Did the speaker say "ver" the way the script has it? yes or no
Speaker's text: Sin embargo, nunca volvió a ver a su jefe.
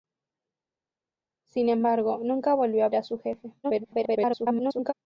no